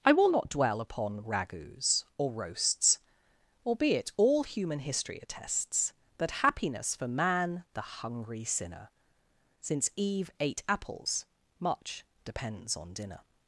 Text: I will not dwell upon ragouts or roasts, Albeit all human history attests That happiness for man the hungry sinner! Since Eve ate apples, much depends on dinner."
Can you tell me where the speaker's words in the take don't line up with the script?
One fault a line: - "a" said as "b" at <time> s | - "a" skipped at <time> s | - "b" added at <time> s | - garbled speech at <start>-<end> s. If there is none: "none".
none